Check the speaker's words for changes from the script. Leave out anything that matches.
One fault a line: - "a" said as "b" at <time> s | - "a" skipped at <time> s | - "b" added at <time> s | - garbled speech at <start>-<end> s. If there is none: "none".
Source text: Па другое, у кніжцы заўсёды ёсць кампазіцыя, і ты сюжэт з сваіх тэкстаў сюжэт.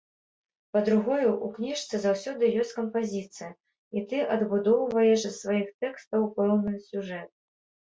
- "сюжэт" said as "адбудоўваеш" at 4.4 s
- "пэўны" added at 6.4 s